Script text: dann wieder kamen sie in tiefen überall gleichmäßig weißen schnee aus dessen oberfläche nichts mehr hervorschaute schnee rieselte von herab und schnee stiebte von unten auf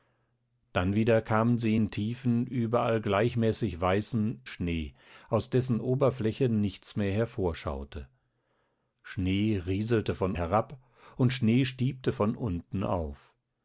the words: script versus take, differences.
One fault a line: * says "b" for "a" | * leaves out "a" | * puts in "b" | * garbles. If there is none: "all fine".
all fine